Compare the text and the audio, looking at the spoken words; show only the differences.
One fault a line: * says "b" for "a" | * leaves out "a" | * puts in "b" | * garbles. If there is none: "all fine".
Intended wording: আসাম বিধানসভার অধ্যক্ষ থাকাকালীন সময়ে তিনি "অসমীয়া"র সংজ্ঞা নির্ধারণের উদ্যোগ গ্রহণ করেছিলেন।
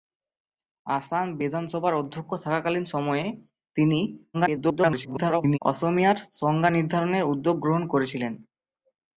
* garbles